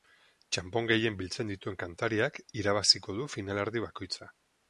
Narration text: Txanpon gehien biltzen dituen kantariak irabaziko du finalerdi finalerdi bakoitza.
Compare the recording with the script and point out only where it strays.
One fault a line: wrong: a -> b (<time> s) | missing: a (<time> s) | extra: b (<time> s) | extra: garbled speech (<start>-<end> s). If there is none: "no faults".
missing: finalerdi (3.8 s)